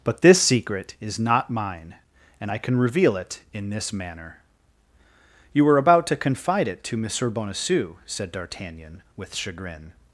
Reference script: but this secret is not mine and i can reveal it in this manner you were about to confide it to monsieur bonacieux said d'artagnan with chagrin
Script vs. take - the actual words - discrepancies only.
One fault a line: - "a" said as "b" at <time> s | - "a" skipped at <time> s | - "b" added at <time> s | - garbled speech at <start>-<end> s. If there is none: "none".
none